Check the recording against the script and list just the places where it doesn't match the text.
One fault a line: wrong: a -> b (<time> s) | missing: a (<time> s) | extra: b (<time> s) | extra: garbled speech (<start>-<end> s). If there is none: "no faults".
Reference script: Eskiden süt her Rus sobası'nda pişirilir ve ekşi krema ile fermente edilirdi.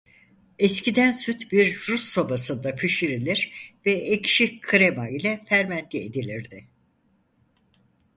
wrong: her -> bir (1.5 s)